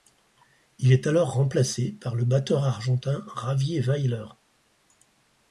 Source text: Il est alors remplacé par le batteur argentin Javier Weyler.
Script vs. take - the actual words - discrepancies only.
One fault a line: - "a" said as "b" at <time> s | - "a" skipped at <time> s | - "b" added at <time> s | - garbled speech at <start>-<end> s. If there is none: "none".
none